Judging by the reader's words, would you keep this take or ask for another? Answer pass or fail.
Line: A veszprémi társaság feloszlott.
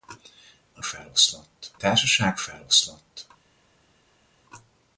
fail